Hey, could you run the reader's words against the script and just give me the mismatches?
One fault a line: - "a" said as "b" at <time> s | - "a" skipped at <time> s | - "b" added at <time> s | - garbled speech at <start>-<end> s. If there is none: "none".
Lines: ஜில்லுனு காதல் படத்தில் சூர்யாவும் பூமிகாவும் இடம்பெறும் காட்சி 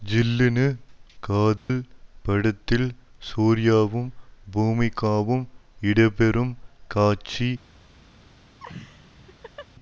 none